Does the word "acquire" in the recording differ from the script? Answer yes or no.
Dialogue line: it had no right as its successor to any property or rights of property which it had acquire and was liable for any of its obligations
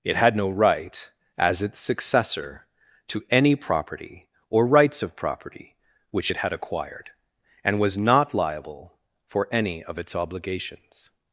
yes